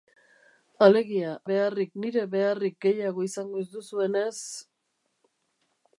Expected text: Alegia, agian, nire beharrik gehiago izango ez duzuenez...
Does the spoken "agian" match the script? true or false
false